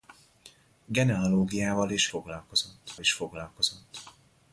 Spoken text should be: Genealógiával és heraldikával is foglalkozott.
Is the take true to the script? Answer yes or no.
no